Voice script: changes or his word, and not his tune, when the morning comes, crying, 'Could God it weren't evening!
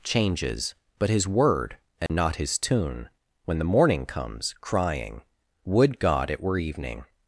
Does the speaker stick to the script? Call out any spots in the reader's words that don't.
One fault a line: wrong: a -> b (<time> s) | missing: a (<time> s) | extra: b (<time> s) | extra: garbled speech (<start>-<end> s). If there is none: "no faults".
wrong: or -> but (1.0 s)
wrong: Could -> Would (5.6 s)
wrong: weren't -> were (6.4 s)